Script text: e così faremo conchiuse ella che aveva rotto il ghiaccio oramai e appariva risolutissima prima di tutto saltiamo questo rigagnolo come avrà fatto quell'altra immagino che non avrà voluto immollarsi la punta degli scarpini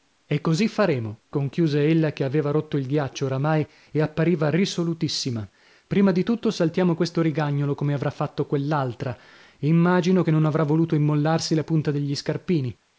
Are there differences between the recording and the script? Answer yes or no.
no